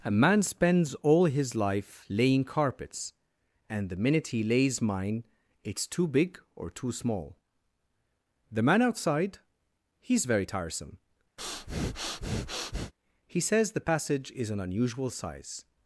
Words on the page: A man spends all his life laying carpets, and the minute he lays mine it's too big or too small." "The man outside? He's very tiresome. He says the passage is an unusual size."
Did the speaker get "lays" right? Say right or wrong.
right